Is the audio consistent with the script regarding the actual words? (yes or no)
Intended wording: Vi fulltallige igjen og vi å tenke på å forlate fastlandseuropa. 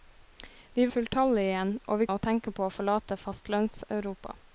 yes